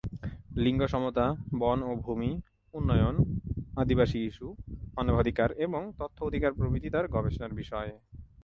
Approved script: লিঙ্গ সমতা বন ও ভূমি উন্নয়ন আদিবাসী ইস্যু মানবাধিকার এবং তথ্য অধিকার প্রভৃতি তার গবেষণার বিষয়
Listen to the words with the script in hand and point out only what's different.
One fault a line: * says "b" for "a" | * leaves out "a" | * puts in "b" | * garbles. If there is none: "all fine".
all fine